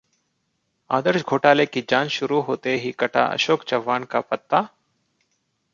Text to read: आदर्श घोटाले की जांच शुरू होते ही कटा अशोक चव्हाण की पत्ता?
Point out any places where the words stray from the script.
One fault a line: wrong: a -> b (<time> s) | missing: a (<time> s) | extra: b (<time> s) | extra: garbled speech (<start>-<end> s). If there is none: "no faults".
wrong: की -> का (4.0 s)